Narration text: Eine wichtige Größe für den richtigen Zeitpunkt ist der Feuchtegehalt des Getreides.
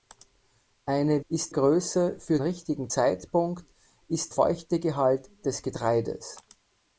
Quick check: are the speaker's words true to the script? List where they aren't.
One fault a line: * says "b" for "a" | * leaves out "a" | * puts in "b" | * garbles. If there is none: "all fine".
* says "ist" for "wichtige"
* leaves out "den"
* leaves out "der"